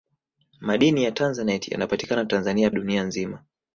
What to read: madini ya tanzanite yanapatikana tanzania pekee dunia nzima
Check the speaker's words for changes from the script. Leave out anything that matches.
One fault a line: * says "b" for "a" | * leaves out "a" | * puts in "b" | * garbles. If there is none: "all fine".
* leaves out "pekee"